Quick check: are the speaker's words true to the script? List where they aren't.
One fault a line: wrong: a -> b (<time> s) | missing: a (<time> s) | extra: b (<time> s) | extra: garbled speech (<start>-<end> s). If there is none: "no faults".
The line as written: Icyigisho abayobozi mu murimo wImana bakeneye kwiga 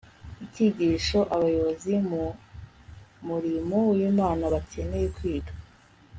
no faults